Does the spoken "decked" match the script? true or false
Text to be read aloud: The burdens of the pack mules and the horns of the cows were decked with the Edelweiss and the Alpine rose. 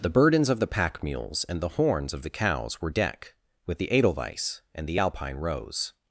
false